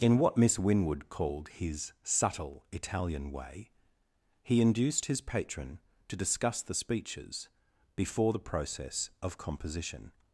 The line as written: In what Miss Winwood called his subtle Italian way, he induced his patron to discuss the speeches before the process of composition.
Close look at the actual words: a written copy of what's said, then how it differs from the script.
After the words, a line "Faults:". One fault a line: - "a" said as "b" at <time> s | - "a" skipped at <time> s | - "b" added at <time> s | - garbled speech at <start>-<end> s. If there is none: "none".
In what Miss Winwood called his subtle Italian way, he induced his patron to discuss the speeches before the process of composition.
Faults:
none